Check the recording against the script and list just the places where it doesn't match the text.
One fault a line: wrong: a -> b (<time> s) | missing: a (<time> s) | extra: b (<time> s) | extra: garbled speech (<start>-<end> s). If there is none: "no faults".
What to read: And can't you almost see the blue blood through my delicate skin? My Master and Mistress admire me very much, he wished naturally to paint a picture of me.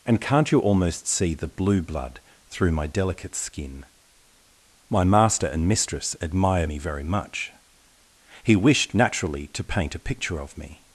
no faults